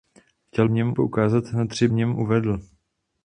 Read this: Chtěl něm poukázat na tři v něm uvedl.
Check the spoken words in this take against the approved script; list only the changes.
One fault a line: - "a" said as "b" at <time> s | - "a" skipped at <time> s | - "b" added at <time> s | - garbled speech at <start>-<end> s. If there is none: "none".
none